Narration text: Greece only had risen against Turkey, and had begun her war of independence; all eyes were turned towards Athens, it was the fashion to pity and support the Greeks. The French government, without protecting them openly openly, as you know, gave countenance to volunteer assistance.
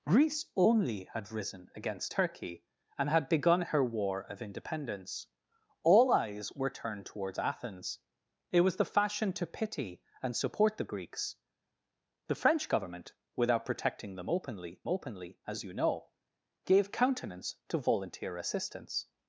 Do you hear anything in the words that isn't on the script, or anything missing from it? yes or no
no